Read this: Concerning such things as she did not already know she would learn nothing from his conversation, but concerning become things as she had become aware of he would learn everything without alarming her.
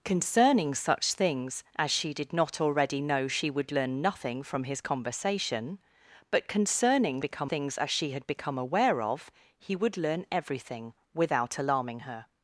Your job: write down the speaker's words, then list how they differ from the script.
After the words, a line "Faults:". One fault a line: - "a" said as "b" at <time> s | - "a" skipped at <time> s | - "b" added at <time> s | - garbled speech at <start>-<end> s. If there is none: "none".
Concerning such things as she did not already know she would learn nothing from his conversation, but concerning become things as she had become aware of he would learn everything without alarming her.
Faults:
none